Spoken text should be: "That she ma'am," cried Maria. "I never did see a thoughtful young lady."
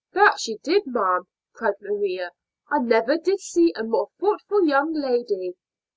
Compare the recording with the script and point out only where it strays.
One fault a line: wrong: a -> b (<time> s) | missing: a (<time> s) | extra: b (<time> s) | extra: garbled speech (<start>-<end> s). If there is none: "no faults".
extra: did (0.6 s)
extra: more (3.8 s)